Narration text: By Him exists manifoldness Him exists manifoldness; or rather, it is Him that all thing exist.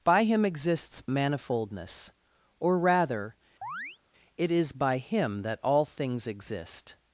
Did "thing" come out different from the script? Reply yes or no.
yes